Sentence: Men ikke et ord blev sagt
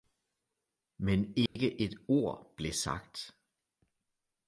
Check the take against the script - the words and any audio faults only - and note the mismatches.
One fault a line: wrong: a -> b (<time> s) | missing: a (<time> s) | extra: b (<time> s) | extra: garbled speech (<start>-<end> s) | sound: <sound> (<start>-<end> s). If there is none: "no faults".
sound: dropout (1.5-1.6 s)